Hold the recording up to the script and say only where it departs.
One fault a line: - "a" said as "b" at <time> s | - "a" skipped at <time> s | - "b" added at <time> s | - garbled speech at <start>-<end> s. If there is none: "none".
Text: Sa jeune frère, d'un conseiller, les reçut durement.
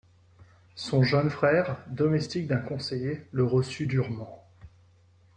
- "Sa" said as "Son" at 0.7 s
- "domestique" added at 1.9 s
- "les" said as "le" at 3.3 s